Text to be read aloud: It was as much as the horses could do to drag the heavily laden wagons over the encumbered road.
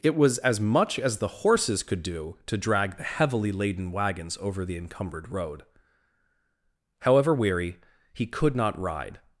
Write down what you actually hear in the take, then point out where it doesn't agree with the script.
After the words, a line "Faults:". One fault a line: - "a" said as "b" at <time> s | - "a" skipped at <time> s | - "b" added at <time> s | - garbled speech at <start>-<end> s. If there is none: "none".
It was as much as the horses could do to drag the heavily laden wagons over the encumbered road. However weary, he could not ride
Faults:
- "However weary he could not ride" added at 7.0 s